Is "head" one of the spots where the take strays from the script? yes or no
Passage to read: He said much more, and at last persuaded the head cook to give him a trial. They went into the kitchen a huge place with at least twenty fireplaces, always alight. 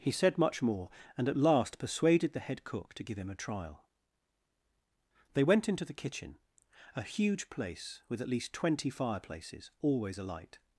no